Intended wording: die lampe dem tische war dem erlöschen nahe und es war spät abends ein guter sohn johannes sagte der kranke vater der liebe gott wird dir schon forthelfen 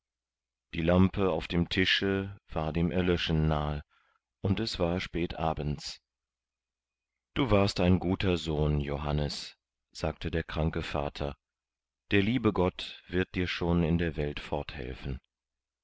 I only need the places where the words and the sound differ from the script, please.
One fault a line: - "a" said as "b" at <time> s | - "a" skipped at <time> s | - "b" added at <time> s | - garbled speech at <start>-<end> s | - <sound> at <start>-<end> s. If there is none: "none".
- "auf" added at 1.3 s
- "du warst" added at 7.3 s
- "in der welt" added at 13.8 s